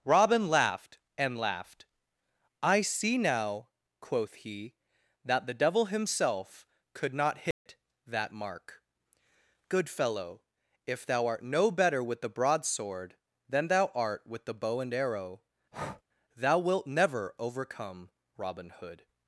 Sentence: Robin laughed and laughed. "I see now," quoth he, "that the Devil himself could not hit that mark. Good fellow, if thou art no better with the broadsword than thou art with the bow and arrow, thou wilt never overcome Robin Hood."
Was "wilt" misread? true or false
false